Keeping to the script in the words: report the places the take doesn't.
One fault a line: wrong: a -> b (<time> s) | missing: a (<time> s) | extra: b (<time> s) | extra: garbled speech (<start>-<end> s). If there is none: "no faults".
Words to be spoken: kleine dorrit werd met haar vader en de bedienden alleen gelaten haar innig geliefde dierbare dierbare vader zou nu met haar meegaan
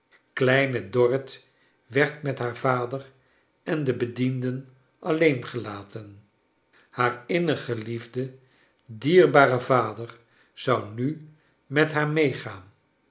missing: dierbare (9.6 s)